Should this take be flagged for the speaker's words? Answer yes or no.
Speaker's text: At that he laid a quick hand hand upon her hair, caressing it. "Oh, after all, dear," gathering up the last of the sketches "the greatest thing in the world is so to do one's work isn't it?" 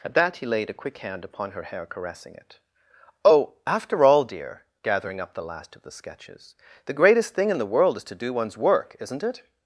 yes